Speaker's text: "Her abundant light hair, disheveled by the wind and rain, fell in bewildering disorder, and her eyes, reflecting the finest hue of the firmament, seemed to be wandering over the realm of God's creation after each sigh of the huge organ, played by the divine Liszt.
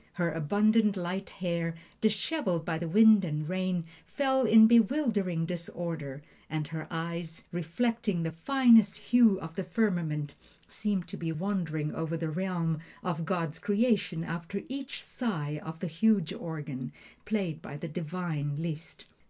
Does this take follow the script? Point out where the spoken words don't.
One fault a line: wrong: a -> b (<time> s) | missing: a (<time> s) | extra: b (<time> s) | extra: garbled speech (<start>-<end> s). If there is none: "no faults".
no faults